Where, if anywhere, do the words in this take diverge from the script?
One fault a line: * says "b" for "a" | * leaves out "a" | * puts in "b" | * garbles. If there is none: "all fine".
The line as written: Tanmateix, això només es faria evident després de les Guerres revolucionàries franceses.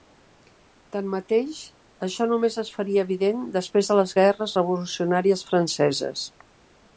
all fine